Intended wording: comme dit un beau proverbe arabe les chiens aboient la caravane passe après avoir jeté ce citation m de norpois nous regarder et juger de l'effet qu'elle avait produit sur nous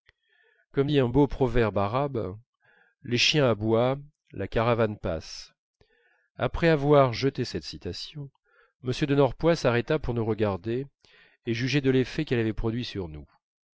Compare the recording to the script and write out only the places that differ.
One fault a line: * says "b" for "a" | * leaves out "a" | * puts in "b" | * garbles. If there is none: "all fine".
* says "cette" for "ce"
* puts in "s'arrêta pour"